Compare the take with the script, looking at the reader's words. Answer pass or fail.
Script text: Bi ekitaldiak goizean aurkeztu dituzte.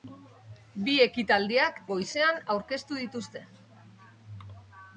pass